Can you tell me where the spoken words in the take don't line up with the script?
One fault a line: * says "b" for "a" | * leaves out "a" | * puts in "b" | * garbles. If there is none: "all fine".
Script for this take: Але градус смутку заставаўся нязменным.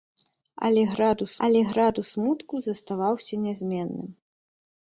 * puts in "але градус"